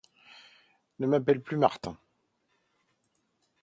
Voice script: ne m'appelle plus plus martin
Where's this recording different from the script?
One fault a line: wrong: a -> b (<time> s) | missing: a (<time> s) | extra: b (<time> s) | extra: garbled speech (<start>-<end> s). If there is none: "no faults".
missing: plus (1.6 s)